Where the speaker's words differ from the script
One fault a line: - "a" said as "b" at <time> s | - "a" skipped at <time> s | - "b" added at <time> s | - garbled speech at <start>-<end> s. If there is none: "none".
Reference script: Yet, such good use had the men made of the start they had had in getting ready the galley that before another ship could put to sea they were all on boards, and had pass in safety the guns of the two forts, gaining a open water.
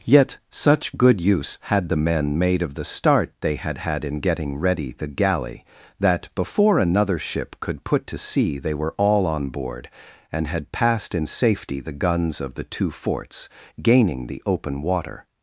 - "boards" said as "board" at 9.5 s
- "pass" said as "passed" at 10.7 s
- "a" said as "the" at 14.3 s